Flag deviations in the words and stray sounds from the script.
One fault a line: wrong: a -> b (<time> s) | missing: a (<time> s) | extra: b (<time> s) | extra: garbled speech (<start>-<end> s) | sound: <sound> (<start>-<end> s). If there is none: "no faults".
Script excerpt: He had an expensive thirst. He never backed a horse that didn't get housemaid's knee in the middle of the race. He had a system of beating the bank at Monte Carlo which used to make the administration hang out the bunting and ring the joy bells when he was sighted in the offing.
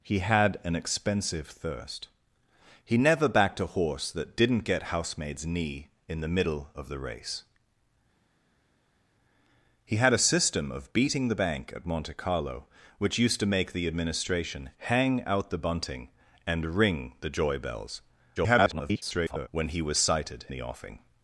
extra: garbled speech (18.4-19.5 s)
missing: in (20.4 s)